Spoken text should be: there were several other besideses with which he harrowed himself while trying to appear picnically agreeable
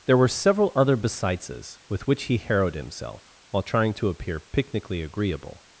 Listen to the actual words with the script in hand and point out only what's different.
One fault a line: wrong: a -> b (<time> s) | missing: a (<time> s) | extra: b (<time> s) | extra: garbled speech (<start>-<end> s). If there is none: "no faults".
no faults